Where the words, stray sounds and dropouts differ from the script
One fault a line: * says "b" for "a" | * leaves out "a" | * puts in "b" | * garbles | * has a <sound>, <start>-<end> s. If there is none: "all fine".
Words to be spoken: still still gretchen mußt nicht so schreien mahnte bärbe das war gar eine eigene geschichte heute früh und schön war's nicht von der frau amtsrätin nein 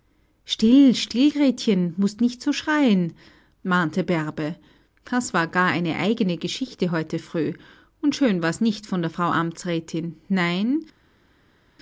all fine